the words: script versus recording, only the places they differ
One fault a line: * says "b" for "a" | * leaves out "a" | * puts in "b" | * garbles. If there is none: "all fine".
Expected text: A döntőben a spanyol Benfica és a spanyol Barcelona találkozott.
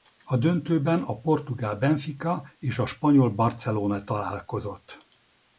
* says "portugál" for "spanyol"